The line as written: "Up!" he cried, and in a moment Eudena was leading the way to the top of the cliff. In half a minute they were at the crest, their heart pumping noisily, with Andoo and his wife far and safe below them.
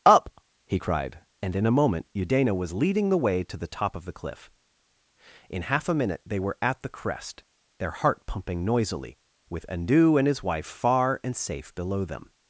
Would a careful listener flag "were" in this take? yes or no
no